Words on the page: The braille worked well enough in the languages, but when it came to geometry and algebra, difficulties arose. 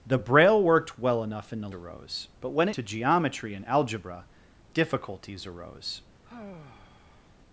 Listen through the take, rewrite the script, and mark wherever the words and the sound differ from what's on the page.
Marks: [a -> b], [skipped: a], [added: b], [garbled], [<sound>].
The braille worked well enough in the [languages, -> arose] but when [skipped: it came] to geometry and algebra, difficulties arose. [sigh]